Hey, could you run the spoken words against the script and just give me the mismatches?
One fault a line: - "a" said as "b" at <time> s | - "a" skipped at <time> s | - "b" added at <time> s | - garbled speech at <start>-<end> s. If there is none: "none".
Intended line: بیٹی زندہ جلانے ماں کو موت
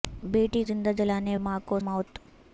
none